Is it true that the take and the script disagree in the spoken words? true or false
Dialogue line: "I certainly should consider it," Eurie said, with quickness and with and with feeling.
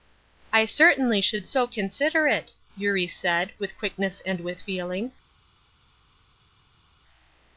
true